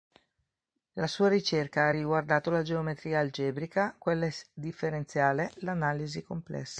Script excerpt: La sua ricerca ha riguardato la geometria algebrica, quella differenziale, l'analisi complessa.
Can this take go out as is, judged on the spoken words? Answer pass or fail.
pass